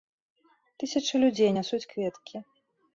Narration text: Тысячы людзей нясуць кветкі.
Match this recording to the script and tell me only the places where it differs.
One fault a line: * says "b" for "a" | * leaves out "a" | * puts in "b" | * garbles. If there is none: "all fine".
all fine